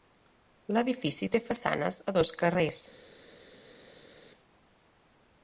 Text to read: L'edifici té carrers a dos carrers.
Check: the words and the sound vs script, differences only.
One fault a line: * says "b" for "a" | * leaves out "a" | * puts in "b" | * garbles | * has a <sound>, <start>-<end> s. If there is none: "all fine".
* says "façanes" for "carrers"